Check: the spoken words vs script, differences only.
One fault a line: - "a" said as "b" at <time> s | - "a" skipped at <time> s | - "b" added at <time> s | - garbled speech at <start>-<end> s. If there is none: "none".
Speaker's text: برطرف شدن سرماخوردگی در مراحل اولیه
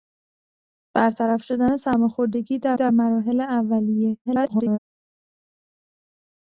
- "در" added at 2.7 s
- garbled speech at 4.3-4.8 s